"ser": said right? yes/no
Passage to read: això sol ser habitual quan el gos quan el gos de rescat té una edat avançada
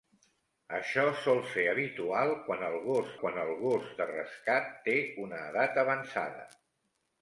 yes